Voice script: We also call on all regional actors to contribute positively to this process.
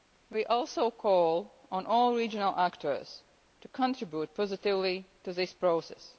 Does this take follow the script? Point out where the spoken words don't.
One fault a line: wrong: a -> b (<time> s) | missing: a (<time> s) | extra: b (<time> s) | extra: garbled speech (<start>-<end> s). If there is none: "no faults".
no faults